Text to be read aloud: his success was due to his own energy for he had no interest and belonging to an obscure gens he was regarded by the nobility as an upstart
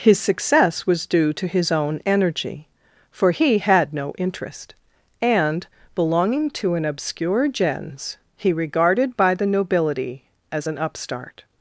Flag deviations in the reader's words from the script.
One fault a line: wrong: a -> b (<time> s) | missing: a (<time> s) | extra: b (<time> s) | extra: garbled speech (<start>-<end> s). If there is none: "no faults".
missing: was (8.5 s)